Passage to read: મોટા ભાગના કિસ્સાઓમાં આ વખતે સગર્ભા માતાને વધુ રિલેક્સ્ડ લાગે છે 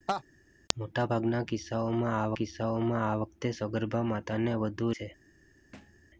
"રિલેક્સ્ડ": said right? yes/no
no